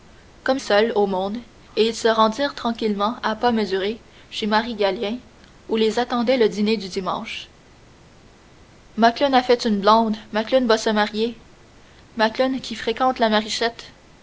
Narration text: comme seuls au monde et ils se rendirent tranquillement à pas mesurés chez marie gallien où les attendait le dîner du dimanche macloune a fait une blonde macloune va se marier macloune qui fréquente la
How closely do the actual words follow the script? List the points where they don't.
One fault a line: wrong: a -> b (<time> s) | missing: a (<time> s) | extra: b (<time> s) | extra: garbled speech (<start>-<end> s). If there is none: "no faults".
no faults